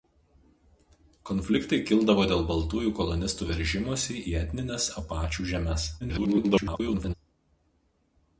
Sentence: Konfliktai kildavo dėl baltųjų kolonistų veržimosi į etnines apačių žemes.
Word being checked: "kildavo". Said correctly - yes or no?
yes